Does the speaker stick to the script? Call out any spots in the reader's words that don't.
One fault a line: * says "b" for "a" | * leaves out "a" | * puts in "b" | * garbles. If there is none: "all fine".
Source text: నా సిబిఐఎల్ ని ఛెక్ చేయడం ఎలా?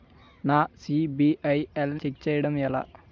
* leaves out "ని"